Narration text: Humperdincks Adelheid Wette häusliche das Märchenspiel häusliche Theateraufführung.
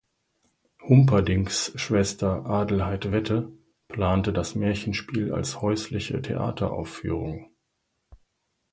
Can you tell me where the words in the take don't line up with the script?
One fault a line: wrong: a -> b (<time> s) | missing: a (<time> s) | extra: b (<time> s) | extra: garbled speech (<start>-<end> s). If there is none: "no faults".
extra: Schwester (1.7 s)
wrong: häusliche -> plante (3.9 s)
extra: als (5.3 s)